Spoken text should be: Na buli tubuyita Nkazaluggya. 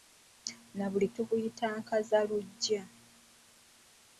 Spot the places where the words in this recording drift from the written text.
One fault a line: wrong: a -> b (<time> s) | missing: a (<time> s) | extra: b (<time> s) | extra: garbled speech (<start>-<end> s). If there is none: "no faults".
no faults